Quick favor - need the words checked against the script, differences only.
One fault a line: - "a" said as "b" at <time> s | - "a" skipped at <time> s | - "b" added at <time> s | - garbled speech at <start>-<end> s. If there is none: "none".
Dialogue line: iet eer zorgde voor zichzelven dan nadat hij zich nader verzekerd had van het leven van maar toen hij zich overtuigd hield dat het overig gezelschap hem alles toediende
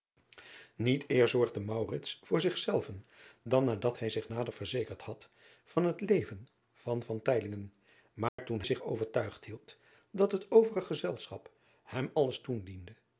- "hij" skipped at 8.6 s